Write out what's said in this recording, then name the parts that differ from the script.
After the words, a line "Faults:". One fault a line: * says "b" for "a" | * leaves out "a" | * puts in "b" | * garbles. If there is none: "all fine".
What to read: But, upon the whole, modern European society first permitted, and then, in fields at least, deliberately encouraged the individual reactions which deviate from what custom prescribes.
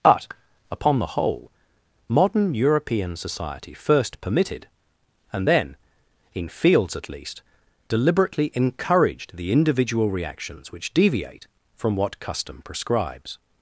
But, upon the whole, modern European society first permitted, and then, in fields at least, deliberately encouraged the individual reactions which deviate from what custom prescribes.
Faults:
all fine